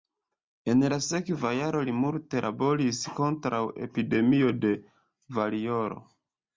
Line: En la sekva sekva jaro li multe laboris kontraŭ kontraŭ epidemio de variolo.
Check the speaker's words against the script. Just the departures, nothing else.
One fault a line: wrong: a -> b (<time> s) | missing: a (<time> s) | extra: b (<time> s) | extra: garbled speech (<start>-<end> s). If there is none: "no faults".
missing: sekva (1.5 s)
missing: kontraŭ (3.6 s)